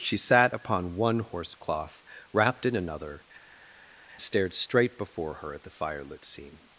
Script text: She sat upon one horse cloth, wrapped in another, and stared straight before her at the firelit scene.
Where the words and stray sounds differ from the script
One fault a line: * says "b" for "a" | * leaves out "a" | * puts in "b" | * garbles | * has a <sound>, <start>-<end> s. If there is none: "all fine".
* leaves out "and"